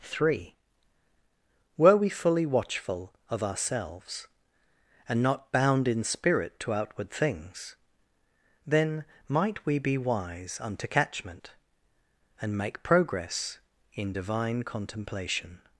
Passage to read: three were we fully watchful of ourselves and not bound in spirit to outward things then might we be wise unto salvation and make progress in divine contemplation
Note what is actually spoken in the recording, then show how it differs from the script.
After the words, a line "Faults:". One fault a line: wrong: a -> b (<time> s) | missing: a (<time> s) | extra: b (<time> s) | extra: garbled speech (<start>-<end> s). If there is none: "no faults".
three were we fully watchful of ourselves and not bound in spirit to outward things then might we be wise unto catchment and make progress in divine contemplation
Faults:
wrong: salvation -> catchment (10.9 s)